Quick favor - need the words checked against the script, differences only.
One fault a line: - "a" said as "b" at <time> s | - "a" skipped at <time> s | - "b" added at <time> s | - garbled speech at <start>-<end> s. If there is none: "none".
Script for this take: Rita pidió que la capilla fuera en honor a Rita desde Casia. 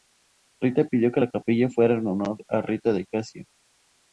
- "desde" said as "de" at 2.9 s